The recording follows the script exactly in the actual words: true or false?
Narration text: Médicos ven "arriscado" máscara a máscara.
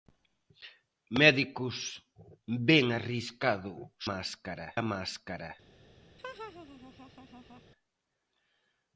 true